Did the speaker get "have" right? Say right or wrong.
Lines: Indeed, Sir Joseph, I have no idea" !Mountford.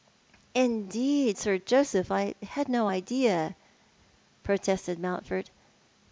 wrong